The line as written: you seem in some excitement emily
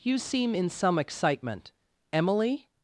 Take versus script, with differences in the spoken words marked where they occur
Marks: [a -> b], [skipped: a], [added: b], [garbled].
you seem in some excitement emily